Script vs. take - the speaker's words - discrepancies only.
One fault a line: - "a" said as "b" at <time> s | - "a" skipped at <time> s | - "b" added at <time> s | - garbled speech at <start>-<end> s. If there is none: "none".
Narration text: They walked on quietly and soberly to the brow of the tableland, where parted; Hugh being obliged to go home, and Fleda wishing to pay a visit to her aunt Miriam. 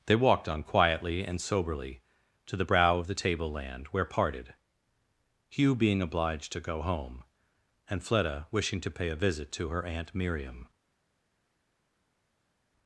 none